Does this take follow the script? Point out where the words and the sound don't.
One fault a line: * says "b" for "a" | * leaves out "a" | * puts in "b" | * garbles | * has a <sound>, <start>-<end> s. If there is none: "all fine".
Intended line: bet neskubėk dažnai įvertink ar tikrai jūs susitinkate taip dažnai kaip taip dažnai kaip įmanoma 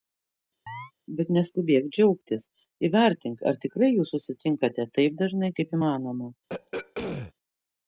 * has a chirp, 0.7-0.9 s
* says "džiaugtis" for "dažnai"
* leaves out "taip dažnai kaip"
* has a throat clearing, 6.5-7.3 s